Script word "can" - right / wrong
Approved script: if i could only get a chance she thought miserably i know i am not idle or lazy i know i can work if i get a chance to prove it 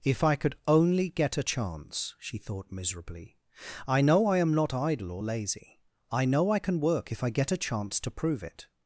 right